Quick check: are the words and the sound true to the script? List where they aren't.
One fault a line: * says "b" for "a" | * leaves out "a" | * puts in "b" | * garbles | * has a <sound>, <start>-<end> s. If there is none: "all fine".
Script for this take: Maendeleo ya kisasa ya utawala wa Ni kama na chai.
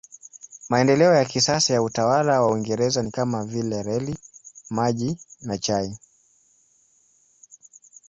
* puts in "Uingereza"
* puts in "vile reli maji"